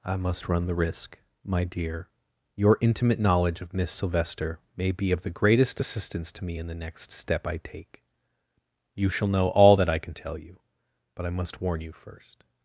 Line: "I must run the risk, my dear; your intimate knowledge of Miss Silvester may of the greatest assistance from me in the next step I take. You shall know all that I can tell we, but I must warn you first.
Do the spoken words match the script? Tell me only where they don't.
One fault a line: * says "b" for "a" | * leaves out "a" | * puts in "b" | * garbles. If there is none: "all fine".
* puts in "be"
* says "to" for "from"
* says "you" for "we"